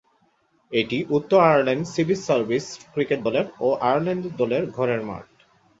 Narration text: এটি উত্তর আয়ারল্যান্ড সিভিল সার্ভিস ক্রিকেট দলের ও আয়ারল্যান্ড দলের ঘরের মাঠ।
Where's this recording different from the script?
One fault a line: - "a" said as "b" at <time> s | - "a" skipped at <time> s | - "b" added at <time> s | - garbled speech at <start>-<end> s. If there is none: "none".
none